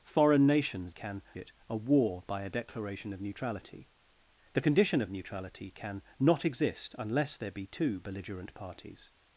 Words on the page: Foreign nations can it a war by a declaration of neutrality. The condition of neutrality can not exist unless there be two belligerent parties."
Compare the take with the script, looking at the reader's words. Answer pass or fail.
pass